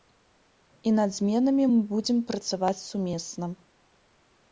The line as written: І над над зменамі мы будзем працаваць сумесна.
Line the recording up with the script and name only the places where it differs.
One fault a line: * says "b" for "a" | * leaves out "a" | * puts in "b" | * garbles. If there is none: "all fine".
* leaves out "над"